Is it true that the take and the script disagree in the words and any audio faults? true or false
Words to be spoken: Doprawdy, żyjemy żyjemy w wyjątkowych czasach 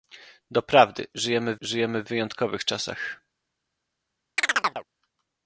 true